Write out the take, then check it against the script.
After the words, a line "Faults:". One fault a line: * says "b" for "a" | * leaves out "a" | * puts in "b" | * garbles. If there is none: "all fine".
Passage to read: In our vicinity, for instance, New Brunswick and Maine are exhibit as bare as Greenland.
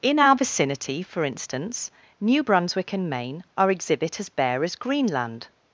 In our vicinity, for instance, New Brunswick and Maine are exhibit as bare as Greenland.
Faults:
all fine